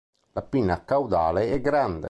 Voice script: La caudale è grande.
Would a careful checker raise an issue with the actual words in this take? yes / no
yes